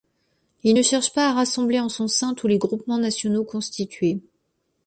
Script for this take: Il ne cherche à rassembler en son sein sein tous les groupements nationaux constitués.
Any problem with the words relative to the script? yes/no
yes